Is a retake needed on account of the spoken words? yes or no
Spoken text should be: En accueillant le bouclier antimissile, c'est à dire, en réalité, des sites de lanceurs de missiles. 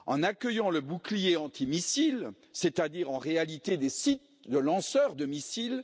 no